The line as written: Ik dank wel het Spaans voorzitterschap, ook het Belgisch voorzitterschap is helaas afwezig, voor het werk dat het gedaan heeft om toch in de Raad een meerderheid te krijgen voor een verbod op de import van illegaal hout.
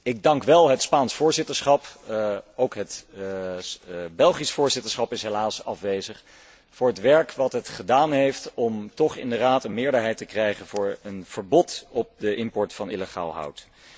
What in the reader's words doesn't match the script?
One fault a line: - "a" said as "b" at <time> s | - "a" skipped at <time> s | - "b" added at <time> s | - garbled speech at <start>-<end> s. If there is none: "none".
none